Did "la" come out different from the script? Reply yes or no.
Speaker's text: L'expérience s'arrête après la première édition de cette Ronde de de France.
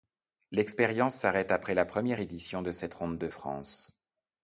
no